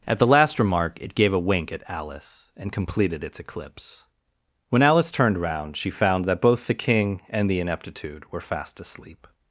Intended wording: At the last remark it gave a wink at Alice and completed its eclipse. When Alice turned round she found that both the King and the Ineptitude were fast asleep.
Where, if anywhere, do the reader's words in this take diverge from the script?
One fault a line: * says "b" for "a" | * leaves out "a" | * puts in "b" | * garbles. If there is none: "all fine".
all fine